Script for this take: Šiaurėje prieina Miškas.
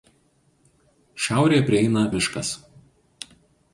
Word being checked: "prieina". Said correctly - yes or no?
yes